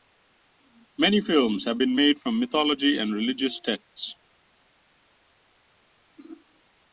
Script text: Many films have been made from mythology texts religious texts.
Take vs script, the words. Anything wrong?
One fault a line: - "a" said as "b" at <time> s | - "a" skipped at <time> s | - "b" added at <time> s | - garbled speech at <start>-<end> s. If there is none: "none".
- "texts" said as "and" at 3.0 s